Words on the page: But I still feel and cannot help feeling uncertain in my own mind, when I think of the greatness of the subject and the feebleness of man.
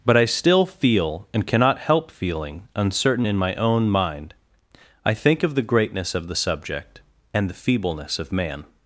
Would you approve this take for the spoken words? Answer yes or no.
no